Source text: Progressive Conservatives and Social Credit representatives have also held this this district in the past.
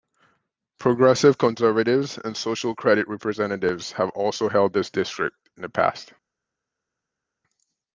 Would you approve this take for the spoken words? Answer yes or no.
no